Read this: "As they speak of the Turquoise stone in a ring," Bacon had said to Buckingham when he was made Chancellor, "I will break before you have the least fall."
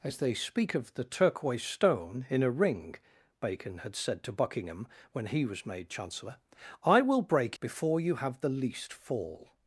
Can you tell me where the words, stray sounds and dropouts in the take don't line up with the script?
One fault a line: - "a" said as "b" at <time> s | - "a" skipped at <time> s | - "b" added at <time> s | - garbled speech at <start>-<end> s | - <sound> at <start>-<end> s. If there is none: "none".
none